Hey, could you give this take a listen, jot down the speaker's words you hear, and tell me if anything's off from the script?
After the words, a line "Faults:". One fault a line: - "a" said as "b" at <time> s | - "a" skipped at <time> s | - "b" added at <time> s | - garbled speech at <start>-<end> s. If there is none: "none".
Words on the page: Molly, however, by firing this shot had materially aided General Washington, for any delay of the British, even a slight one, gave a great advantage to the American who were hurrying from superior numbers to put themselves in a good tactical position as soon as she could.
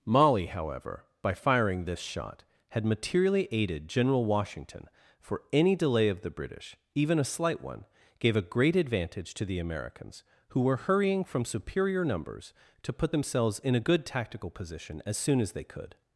Molly, however, by firing this shot had materially aided General Washington, for any delay of the British, even a slight one, gave a great advantage to the Americans who were hurrying from superior numbers to put themselves in a good tactical position as soon as they could.
Faults:
- "American" said as "Americans" at 9.6 s
- "she" said as "they" at 15.5 s